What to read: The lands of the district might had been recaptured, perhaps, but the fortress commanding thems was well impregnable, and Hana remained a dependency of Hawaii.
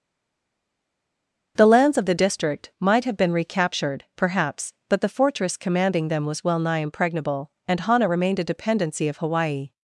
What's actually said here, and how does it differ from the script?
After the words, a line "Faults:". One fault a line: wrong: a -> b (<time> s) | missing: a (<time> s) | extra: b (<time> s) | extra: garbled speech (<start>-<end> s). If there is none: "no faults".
The lands of the district might have been recaptured, perhaps, but the fortress commanding them was well nigh impregnable, and Hana remained a dependency of Hawaii.
Faults:
wrong: had -> have (3.0 s)
wrong: thems -> them (6.1 s)
extra: nigh (6.6 s)